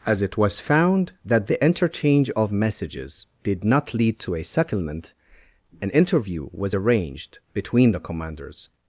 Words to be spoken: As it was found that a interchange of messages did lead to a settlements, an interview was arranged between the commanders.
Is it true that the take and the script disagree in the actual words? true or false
true